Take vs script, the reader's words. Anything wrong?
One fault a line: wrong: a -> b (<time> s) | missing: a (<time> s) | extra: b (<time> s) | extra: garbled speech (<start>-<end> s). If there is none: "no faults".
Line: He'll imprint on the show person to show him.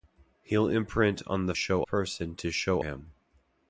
no faults